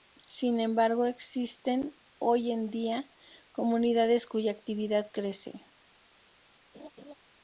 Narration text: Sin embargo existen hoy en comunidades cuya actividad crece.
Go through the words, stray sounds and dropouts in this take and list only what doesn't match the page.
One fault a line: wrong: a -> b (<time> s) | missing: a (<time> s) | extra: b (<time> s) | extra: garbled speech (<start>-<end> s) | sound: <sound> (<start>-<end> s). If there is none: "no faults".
extra: día (2.7 s)
sound: laugh (6.7-7.1 s)